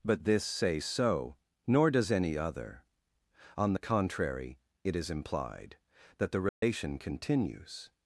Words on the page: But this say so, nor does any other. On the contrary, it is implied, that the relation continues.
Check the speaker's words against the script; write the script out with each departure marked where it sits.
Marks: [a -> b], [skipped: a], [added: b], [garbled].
But this say so, nor does any other. On the contrary, it is implied, that the relation continues.